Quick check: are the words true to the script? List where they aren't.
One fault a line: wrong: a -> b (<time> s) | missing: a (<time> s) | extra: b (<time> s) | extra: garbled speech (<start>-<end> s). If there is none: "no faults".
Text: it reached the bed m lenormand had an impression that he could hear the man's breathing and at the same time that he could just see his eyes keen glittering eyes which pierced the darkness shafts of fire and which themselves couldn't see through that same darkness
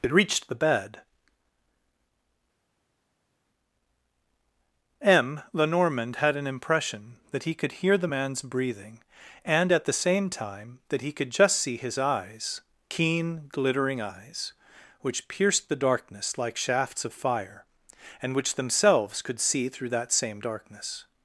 extra: like (16.4 s)
wrong: couldn't -> could (19.2 s)